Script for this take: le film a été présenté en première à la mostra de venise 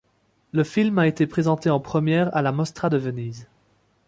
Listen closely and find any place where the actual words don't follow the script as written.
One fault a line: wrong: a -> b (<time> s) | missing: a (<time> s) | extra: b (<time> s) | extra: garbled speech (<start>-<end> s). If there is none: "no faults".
no faults